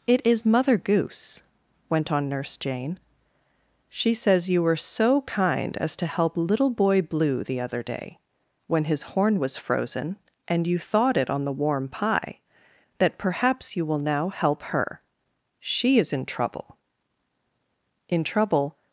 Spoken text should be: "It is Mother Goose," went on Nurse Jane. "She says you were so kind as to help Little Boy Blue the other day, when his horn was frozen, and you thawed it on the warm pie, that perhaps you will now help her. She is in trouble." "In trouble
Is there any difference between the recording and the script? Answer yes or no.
no